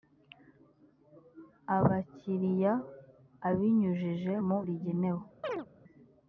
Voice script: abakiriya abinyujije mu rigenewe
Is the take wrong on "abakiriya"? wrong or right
right